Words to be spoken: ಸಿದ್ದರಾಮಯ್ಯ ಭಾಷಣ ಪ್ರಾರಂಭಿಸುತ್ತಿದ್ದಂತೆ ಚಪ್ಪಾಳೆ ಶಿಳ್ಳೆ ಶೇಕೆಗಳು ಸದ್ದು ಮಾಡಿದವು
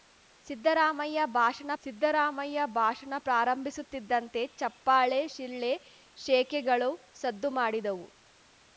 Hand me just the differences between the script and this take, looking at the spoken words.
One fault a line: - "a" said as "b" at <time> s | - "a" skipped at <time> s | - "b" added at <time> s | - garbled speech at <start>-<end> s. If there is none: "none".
- "ಸಿದ್ದರಾಮಯ್ಯ ಭಾಷಣ" added at 1.8 s